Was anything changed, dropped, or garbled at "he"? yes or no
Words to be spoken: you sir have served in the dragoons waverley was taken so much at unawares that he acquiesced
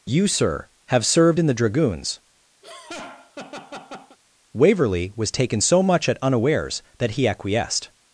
no